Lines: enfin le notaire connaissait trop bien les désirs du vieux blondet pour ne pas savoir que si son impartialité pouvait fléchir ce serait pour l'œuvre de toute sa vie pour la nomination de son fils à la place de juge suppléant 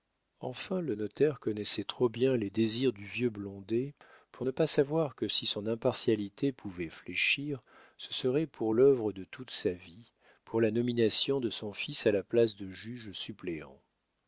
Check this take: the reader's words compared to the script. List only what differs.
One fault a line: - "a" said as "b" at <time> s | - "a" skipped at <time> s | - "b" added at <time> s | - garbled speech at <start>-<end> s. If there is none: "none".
none